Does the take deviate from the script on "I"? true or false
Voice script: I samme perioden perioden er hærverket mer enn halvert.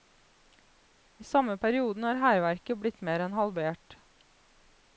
false